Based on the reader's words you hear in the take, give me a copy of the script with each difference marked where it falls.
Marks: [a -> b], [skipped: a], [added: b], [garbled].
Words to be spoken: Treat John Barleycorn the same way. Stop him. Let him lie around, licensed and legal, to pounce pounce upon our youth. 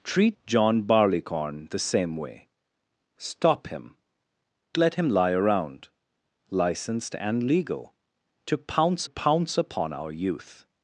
Treat John Barleycorn the same way. Stop him. Let him lie around, licensed and legal, to pounce pounce upon our youth.